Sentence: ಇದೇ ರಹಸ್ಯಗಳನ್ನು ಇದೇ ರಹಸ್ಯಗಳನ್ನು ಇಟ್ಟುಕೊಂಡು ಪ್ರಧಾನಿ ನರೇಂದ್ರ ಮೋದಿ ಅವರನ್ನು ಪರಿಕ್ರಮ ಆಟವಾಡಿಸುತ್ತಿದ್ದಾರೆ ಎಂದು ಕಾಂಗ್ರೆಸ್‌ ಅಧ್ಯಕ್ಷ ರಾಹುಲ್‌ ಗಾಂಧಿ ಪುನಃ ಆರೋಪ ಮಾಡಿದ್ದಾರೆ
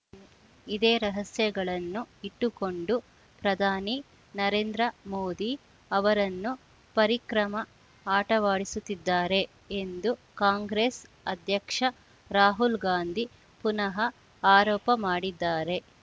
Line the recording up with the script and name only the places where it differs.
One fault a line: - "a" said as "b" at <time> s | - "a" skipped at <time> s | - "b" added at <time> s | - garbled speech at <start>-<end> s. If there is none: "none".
- "ಇದೇ ರಹಸ್ಯಗಳನ್ನು" skipped at 2.0 s